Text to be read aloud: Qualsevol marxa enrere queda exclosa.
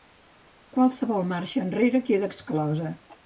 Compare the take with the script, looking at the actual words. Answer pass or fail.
pass